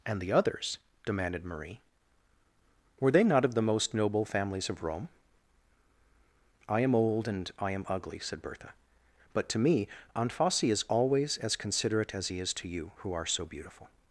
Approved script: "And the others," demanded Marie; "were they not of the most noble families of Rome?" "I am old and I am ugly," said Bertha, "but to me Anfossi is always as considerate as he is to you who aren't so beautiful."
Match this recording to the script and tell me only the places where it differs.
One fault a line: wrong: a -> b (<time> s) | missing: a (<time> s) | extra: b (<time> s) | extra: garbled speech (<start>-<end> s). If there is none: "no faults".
wrong: aren't -> are (13.1 s)